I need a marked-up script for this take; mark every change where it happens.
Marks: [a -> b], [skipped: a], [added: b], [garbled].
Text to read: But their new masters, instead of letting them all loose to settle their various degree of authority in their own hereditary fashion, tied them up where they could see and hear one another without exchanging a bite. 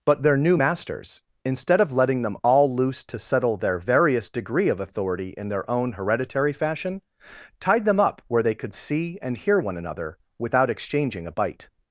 But their new masters, instead of letting them all loose to settle their various degree of authority in their own hereditary fashion, tied them up where they could see and hear one another without exchanging a bite.